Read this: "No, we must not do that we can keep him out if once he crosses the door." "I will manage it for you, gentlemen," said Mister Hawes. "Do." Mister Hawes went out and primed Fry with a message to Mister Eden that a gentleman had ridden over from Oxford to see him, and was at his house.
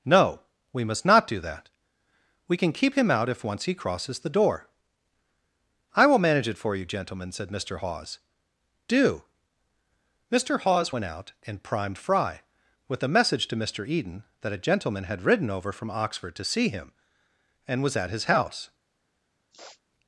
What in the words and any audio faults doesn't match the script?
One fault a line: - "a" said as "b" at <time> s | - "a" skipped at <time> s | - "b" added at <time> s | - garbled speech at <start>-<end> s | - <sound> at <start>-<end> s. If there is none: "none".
- sniff at 19.5-19.8 s